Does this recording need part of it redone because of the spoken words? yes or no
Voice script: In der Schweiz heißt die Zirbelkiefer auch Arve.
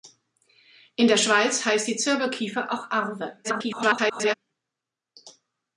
yes